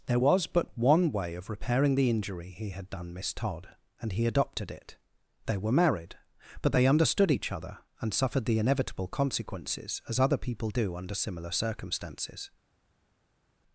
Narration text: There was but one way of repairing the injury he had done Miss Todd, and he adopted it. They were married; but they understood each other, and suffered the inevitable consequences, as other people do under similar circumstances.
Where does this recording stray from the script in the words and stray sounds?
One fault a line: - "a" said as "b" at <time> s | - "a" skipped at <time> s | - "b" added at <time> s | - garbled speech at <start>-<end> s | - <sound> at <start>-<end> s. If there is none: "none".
none